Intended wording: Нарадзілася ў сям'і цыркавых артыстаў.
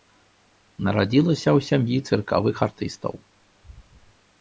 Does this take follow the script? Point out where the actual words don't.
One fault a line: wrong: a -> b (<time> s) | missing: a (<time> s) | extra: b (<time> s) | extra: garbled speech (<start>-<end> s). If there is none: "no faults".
no faults